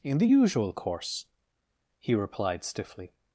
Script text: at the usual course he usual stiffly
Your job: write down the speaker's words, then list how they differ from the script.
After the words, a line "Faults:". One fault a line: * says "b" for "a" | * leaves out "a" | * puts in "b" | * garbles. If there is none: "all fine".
in the usual course he replied stiffly
Faults:
* says "in" for "at"
* says "replied" for "usual"